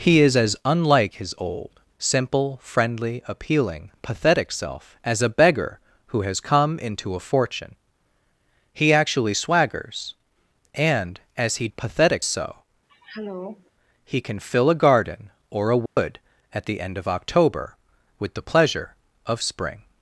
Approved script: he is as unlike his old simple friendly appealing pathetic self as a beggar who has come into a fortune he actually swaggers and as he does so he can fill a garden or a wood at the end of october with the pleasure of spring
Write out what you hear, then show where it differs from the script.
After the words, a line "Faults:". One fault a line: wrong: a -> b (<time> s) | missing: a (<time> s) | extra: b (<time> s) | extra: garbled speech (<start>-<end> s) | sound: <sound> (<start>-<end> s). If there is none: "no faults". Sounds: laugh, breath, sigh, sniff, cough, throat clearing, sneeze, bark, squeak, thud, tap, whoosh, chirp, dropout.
he is as unlike his old simple friendly appealing pathetic self as a beggar who has come into a fortune he actually swaggers and as he pathetic so he can fill a garden or a wood at the end of october with the pleasure of spring
Faults:
wrong: does -> pathetic (11.8 s)
sound: throat clearing (12.9-13.7 s)
sound: dropout (15.9-16.0 s)